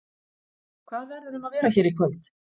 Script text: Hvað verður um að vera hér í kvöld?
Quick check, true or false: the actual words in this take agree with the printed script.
true